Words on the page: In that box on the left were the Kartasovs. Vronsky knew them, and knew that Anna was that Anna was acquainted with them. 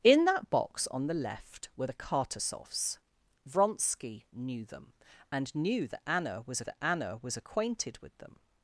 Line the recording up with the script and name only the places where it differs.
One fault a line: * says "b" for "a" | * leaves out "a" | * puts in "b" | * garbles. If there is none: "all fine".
all fine